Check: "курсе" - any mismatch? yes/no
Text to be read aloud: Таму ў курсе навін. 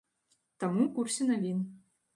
no